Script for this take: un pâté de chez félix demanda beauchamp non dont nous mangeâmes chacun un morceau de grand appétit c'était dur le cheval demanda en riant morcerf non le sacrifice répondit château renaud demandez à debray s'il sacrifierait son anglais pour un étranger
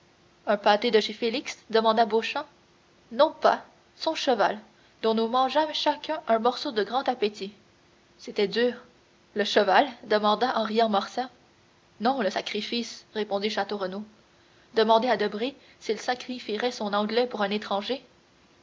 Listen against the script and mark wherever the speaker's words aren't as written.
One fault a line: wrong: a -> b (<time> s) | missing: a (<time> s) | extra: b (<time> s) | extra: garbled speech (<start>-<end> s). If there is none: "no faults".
extra: pas son cheval (3.3 s)